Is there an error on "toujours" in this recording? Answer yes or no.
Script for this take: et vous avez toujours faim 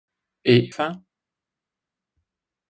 yes